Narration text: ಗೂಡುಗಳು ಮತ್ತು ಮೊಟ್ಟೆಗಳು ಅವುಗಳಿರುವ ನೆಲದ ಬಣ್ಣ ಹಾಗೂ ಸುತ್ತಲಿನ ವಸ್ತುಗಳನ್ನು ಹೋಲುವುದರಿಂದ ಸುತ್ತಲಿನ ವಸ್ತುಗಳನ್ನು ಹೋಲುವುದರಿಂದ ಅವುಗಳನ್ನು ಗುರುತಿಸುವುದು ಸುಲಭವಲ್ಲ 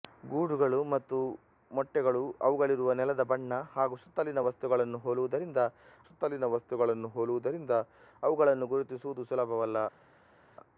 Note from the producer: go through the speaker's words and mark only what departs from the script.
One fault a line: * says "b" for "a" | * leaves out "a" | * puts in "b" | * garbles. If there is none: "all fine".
all fine